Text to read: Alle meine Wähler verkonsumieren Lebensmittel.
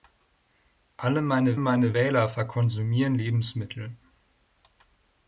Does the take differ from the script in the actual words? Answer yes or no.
yes